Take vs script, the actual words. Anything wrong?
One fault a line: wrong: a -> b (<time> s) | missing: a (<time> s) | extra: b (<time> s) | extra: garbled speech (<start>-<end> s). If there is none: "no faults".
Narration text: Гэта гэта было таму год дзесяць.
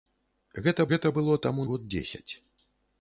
no faults